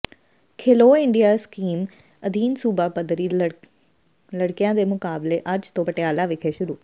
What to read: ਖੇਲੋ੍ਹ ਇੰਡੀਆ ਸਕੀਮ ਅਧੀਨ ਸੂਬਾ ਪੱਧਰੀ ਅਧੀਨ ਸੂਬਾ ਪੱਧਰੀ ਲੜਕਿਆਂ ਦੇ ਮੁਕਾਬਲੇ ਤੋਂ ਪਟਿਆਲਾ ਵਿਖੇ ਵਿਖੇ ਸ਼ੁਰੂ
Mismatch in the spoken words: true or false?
true